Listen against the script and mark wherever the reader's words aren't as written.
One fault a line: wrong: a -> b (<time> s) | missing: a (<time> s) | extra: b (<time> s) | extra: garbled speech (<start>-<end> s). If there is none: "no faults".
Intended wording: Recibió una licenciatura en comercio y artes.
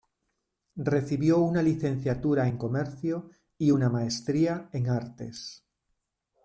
extra: una maestría en (3.7 s)